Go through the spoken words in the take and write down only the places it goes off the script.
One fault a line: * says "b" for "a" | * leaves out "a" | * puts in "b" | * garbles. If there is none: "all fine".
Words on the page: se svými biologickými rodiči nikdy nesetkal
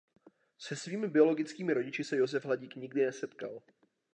* puts in "se josef hladík"